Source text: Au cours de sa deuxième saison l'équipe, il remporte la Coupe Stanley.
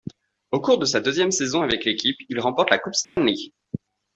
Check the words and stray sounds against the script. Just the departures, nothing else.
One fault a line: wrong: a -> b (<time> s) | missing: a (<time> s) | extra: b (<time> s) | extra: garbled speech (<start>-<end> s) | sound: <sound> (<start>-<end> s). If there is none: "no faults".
extra: avec (1.6 s)
sound: dropout (3.0-3.2 s)